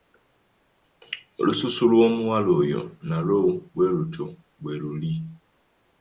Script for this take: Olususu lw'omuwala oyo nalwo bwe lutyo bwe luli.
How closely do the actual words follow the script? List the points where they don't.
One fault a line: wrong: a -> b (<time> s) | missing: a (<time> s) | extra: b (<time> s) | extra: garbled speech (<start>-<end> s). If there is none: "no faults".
no faults